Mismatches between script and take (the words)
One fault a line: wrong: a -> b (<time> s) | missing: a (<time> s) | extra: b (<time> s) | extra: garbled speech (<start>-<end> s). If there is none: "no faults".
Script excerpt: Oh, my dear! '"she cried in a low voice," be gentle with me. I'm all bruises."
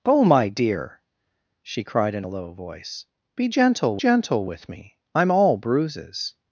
extra: gentle (4.0 s)